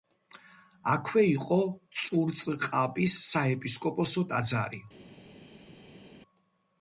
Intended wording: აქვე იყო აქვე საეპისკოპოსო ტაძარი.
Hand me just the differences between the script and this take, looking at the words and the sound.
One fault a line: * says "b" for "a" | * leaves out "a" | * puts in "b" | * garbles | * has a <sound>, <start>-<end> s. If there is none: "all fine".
* says "წურწყაბის" for "აქვე"